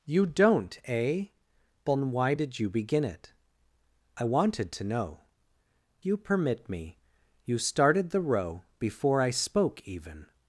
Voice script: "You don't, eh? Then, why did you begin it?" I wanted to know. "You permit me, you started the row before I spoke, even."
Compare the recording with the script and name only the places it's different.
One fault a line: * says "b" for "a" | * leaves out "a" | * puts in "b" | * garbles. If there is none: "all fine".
all fine